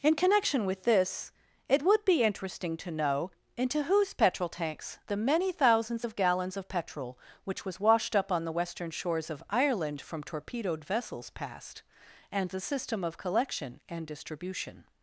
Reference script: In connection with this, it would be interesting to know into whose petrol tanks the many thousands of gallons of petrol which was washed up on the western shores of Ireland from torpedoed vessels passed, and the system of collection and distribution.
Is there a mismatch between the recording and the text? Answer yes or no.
no